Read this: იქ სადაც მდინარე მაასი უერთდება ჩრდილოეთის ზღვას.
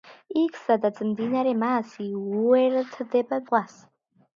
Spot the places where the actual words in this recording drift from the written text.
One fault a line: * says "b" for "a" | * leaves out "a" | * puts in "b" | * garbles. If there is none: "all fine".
* leaves out "ჩრდილოეთის"